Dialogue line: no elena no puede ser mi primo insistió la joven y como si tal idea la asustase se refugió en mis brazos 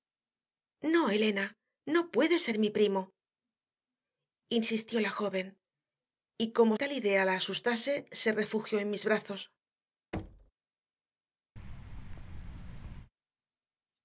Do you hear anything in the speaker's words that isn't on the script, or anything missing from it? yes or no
yes